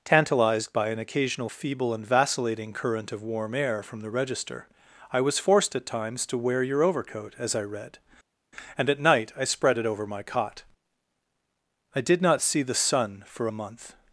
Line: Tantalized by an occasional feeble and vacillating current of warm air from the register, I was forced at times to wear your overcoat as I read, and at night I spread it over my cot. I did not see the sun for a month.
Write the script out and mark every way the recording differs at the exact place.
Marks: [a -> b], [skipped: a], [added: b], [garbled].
Tantalized by an occasional feeble and vacillating current of warm air from the register, I was forced at times to wear your overcoat as I read, and at night I spread it over my cot. I did not see the sun for a month.